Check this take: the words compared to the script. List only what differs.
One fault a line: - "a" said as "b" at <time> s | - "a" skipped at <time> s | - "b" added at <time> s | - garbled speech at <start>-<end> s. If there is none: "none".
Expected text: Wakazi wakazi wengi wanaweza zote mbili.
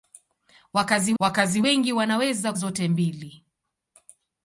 none